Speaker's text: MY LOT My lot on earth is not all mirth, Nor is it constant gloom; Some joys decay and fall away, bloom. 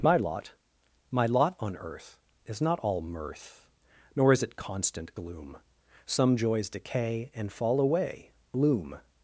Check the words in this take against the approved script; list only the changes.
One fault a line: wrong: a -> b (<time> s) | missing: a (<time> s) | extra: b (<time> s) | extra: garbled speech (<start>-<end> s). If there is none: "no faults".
no faults